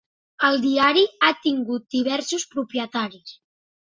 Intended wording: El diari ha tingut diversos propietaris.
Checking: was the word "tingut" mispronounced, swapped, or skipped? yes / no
no